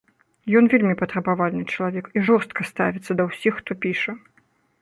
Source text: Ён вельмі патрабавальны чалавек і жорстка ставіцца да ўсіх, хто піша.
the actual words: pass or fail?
pass